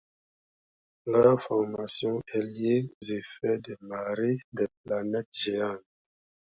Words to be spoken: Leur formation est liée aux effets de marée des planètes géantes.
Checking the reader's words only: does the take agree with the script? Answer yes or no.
no